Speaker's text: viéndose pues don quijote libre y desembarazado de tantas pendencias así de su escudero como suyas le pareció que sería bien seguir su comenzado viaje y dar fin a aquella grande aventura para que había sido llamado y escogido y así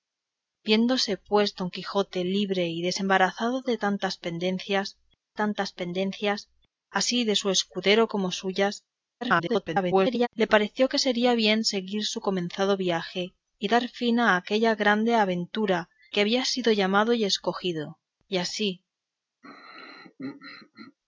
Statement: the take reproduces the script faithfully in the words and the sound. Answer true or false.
false